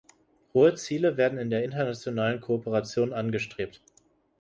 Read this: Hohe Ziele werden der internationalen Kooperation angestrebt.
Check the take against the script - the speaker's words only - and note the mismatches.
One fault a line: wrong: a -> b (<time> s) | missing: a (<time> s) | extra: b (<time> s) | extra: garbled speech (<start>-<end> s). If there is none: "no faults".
extra: in (1.4 s)